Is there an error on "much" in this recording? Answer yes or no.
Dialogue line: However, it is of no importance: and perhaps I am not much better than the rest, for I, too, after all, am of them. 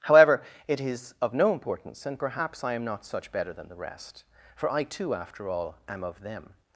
yes